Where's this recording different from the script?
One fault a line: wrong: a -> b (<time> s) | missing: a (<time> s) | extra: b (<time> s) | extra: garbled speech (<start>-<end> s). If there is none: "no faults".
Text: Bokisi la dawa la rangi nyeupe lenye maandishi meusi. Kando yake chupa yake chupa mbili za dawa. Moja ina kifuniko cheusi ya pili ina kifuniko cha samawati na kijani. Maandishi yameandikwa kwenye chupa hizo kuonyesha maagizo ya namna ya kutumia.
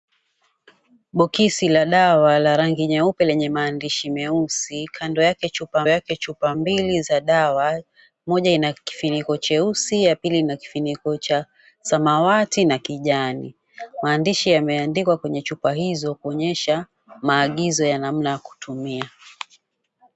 no faults